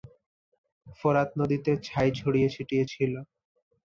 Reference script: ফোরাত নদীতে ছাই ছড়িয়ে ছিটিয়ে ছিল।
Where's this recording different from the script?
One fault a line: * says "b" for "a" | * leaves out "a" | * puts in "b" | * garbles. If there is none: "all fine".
all fine